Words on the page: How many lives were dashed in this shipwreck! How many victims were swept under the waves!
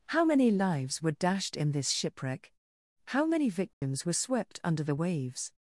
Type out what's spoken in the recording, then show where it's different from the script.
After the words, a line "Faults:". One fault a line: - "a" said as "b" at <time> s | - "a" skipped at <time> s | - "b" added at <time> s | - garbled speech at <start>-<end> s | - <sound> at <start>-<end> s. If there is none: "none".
How many lives were dashed in this shipwreck! How many victims were swept under the waves!
Faults:
- dropout at 3.7-3.8 s